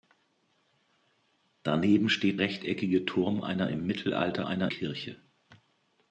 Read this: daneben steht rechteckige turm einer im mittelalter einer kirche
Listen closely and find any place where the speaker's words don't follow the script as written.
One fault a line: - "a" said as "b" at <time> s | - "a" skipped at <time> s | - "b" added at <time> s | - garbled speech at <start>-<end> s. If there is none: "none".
none